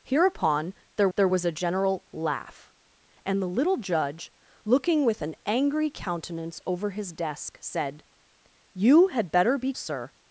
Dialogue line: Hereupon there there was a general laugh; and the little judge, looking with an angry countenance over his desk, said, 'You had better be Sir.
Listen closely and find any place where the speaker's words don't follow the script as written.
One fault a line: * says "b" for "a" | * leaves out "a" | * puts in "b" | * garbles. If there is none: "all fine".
all fine